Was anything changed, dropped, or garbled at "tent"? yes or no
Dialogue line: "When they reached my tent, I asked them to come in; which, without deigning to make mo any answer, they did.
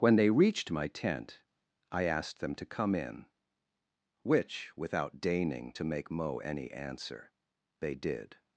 no